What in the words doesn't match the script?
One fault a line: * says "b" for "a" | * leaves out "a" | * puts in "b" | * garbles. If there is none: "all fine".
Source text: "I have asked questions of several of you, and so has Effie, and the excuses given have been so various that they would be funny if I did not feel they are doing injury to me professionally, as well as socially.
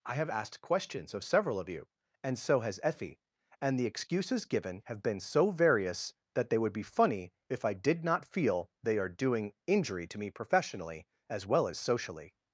all fine